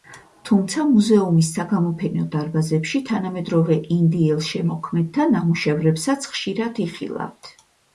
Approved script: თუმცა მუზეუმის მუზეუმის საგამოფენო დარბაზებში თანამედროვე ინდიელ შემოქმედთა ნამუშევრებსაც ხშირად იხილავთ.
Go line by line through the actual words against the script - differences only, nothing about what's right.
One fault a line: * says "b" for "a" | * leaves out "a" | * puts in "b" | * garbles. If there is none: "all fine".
* leaves out "მუზეუმის"